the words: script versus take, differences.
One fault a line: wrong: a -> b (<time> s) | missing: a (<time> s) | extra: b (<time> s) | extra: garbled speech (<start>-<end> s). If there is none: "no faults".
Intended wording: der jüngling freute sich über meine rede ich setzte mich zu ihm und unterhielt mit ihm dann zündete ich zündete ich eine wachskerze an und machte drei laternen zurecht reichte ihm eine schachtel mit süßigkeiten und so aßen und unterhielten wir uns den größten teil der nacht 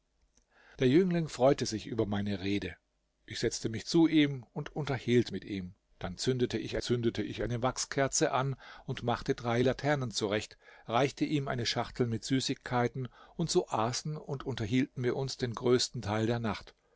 no faults